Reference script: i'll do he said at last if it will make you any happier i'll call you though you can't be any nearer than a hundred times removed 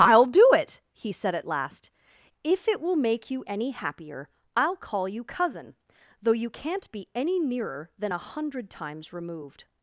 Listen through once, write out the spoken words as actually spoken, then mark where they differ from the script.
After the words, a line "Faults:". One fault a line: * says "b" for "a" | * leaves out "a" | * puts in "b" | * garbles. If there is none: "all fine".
i'll do it he said at last if it will make you any happier i'll call you cousin though you can't be any nearer than a hundred times removed
Faults:
* puts in "it"
* puts in "cousin"